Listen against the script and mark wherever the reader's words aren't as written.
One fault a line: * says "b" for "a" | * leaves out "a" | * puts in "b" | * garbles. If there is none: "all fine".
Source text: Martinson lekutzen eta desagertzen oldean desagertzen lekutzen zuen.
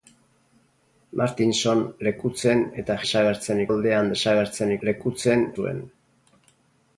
all fine